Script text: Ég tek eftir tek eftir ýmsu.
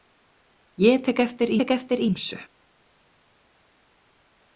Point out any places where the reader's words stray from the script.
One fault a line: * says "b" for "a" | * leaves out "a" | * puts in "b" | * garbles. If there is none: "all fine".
all fine